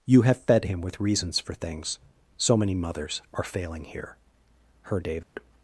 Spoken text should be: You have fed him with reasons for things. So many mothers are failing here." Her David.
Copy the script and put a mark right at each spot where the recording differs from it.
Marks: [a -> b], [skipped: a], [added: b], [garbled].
You have fed him with reasons for things. So many mothers are failing here." Her David.